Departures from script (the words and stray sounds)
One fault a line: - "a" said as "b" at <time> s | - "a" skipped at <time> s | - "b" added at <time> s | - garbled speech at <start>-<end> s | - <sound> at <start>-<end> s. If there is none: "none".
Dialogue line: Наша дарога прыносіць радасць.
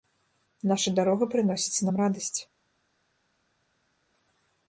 - "нам" added at 1.9 s